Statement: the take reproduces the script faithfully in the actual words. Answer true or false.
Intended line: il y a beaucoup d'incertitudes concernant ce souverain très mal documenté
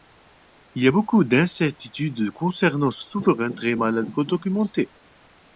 true